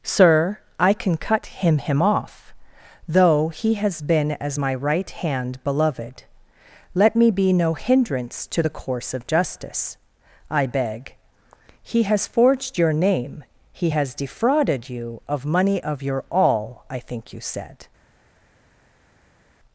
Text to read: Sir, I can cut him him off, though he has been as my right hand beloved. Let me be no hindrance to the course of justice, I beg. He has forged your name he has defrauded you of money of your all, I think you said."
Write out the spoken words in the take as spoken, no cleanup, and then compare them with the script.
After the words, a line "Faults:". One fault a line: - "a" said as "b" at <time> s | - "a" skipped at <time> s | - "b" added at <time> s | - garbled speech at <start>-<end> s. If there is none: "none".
Sir, I can cut him him off, though he has been as my right hand beloved. Let me be no hindrance to the course of justice, I beg. He has forged your name he has defrauded you of money of your all, I think you said."
Faults:
none